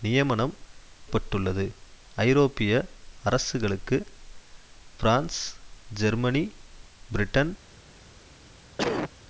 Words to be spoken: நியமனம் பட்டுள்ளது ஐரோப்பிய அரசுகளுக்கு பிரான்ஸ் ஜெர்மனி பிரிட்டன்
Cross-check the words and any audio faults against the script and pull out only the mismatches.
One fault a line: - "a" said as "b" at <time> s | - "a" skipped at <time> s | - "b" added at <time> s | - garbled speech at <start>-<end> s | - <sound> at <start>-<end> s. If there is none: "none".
- cough at 8.8-9.1 s